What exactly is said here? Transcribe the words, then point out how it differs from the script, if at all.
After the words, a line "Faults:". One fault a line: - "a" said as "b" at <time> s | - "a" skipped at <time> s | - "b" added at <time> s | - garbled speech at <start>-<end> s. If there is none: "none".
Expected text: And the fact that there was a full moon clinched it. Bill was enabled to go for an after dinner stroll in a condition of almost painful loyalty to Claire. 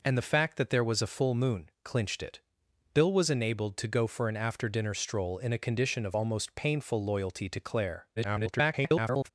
And the fact that there was a full moon clinched it. Bill was enabled to go for an after dinner stroll in a condition of almost painful loyalty to Claire. [garbled]
Faults:
- garbled speech at 8.2-9.3 s